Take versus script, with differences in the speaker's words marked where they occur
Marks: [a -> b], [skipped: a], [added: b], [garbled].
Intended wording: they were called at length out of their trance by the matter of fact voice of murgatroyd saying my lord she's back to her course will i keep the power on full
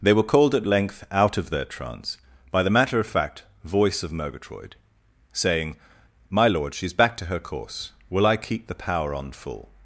they were called at length out of their trance by the matter of fact voice of murgatroyd saying my lord she's back to her course will i keep the power on full